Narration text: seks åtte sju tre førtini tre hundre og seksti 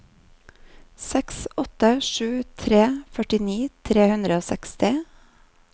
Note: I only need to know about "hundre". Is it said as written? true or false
true